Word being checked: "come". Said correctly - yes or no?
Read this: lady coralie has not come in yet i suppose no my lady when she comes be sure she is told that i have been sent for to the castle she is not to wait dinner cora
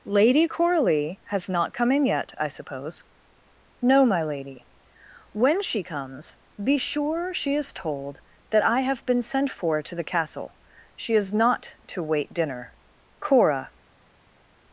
yes